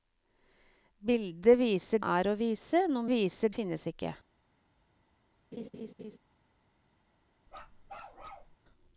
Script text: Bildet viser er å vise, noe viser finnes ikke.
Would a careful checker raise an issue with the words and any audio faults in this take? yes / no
yes